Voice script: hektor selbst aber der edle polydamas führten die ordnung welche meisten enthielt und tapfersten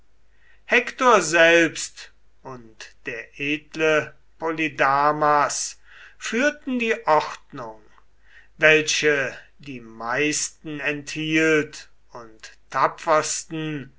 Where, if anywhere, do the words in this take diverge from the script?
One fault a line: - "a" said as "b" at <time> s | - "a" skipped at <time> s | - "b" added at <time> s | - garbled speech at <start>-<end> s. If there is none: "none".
- "aber" said as "und" at 2.4 s
- "die" added at 9.6 s